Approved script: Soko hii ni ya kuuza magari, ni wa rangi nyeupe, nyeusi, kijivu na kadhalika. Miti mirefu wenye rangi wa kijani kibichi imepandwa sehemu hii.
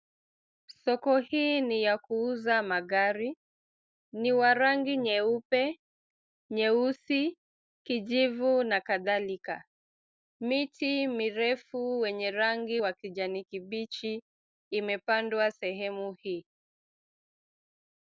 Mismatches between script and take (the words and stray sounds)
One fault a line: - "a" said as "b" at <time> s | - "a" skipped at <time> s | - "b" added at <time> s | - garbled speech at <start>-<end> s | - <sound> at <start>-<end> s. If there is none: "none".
none